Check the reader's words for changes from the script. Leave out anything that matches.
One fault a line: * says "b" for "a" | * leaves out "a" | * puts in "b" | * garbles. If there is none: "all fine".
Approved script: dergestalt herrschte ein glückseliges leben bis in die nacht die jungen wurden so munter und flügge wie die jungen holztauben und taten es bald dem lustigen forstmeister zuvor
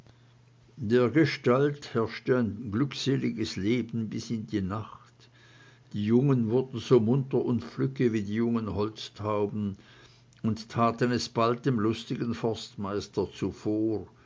all fine